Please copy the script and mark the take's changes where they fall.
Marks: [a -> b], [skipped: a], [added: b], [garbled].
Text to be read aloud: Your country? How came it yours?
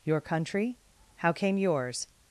Your country? How came [skipped: it] yours?